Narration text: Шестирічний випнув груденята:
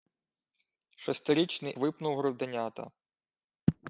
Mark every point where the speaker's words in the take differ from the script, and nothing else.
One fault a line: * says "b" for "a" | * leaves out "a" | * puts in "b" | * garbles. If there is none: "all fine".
all fine